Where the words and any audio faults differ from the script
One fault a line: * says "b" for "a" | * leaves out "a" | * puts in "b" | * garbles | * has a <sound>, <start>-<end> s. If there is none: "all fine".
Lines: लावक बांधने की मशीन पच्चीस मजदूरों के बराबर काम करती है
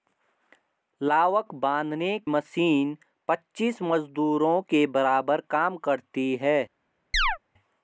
* leaves out "की"
* has a chirp, 7.1-7.4 s